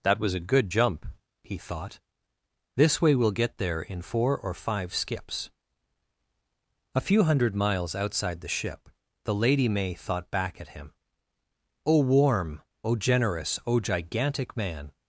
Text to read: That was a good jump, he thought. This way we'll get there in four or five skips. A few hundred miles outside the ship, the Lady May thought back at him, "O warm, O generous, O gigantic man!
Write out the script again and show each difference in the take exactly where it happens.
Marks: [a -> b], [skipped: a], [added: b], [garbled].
That was a good jump, he thought. This way we'll get there in four or five skips. A few hundred miles outside the ship, the Lady May thought back at him, "O warm, O generous, O gigantic man!